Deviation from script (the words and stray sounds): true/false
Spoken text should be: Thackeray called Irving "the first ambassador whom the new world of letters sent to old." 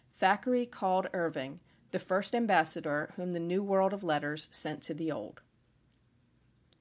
true